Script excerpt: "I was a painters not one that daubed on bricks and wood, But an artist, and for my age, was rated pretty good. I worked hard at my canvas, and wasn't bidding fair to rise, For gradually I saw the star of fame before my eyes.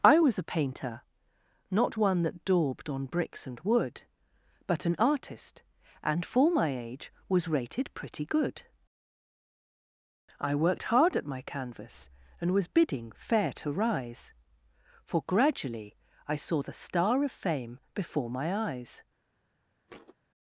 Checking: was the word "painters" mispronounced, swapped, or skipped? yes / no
yes